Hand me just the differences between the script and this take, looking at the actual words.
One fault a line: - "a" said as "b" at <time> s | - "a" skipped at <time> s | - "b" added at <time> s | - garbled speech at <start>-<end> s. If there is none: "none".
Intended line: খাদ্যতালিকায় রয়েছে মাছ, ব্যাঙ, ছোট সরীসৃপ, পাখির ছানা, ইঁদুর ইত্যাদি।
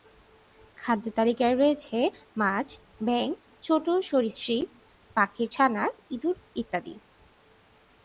none